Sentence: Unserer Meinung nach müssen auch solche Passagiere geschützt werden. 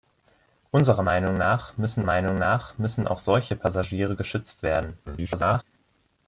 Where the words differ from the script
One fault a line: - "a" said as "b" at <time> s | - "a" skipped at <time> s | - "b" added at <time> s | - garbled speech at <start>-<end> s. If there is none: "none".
- "Meinung nach müssen" added at 2.0 s
- garbled speech at 5.1-5.6 s